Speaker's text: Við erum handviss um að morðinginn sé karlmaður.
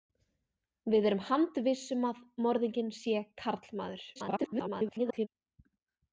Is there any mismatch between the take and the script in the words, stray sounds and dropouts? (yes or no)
yes